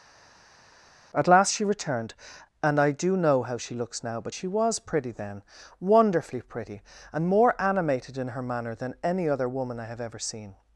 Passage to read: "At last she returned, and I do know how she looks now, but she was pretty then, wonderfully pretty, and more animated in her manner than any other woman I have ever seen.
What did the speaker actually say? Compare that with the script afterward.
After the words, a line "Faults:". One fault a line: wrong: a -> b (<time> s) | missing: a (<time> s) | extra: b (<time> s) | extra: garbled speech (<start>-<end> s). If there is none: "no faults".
"At last she returned, and I do know how she looks now, but she was pretty then, wonderfully pretty, and more animated in her manner than any other woman I have ever seen.
Faults:
no faults